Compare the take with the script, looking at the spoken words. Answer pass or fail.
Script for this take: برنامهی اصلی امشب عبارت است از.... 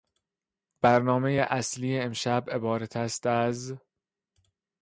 pass